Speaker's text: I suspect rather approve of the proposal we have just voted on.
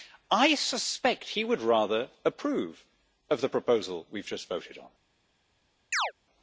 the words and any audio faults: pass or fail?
fail